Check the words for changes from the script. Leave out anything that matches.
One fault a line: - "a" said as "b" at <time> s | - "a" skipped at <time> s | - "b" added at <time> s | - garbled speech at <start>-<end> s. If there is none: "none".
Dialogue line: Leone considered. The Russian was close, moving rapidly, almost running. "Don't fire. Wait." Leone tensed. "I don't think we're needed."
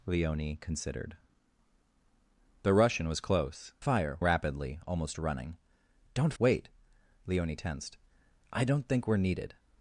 - "moving" said as "fire" at 3.8 s
- "fire" skipped at 6.3 s